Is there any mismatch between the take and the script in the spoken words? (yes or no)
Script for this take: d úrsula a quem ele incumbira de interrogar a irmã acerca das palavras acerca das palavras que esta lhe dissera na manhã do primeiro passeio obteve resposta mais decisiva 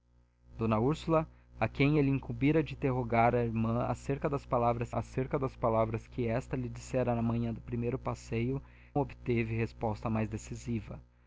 no